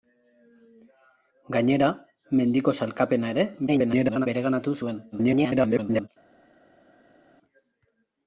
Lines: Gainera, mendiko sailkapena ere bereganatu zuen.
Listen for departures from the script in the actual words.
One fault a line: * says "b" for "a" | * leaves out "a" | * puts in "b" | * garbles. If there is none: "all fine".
* garbles
* garbles